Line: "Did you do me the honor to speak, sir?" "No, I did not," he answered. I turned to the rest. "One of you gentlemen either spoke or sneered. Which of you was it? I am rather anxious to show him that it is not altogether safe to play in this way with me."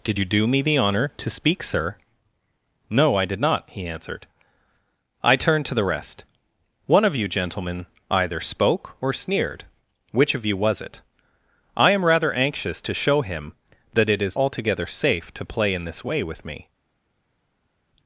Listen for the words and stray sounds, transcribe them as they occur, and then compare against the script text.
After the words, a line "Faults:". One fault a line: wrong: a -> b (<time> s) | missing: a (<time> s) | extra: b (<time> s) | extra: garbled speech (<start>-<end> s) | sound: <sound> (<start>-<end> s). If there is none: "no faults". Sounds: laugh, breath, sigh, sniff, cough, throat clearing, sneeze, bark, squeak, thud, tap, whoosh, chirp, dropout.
"Did you do me the honor to speak, sir?" "No, I did not," he answered. I turned to the rest. "One of you gentlemen either spoke or sneered. Which of you was it? I am rather anxious to show him that it is altogether safe to play in this way with me."
Faults:
missing: not (14.4 s)